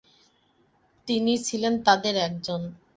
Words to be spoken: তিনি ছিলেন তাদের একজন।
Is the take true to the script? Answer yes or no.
yes